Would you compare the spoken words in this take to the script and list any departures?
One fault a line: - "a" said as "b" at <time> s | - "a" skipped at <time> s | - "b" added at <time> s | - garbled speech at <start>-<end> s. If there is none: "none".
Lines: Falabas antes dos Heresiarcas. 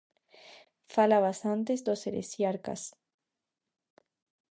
none